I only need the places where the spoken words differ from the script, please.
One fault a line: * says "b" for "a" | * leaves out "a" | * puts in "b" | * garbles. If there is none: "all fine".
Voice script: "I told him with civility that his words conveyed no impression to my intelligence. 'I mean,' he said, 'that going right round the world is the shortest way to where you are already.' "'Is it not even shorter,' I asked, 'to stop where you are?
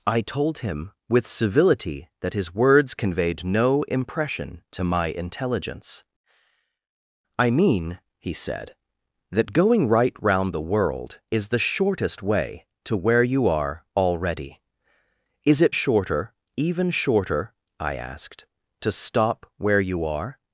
* says "shorter" for "not"